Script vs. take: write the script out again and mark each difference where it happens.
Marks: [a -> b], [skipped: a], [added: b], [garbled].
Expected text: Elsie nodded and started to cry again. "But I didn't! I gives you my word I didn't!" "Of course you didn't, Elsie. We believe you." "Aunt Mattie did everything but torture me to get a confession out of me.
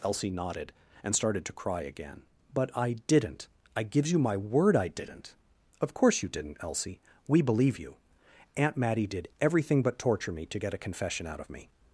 Elsie nodded and started to cry again. "But I didn't! I gives you my word I didn't!" "Of course you didn't, Elsie. We believe you." "Aunt Mattie did everything but torture me to get a confession out of me.